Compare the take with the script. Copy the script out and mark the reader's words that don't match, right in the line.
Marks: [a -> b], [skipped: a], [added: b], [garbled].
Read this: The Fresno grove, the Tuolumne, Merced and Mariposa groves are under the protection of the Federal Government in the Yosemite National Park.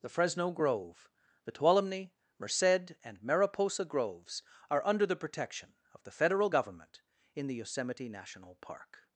The Fresno grove, the Tuolumne, Merced and Mariposa groves are under the protection of the Federal Government in the Yosemite National Park.